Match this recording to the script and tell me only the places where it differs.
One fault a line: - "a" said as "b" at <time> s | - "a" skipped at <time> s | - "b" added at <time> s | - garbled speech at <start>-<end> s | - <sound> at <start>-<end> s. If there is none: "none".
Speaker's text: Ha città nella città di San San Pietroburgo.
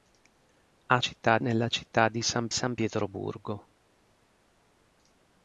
none